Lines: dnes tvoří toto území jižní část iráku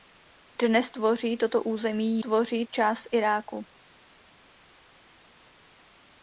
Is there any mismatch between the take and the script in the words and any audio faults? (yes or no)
yes